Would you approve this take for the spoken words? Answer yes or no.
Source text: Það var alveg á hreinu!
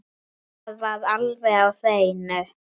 yes